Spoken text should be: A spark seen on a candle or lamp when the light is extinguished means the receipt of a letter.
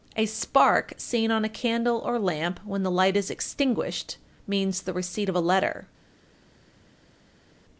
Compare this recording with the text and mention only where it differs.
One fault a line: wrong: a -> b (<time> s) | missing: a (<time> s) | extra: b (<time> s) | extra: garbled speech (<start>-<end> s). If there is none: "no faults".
no faults